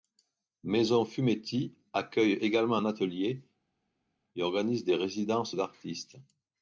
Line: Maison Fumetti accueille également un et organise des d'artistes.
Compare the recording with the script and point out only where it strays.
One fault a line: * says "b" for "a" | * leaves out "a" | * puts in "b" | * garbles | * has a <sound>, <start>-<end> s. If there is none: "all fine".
* puts in "atelier"
* puts in "résidences"